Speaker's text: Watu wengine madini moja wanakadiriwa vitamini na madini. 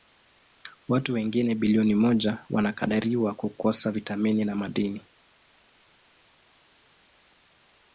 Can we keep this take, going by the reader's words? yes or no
no